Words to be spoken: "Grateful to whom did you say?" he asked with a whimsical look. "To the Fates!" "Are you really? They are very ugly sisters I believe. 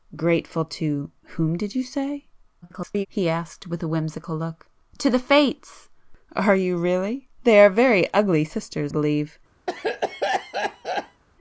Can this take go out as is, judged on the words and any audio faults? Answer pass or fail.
fail